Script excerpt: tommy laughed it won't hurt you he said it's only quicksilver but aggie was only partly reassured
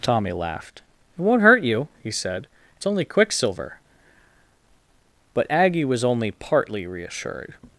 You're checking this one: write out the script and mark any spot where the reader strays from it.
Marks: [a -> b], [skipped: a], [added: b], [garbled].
tommy laughed it won't hurt you he said it's only quicksilver but aggie was only partly reassured